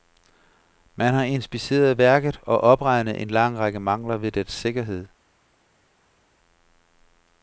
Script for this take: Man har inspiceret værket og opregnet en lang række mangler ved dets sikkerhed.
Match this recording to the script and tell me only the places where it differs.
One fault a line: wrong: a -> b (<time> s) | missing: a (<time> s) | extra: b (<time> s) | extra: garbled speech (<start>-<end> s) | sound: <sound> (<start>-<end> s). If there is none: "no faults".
no faults